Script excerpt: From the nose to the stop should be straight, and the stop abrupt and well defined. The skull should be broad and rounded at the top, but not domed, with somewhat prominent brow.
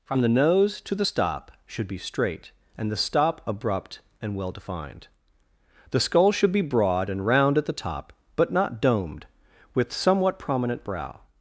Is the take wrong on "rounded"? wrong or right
wrong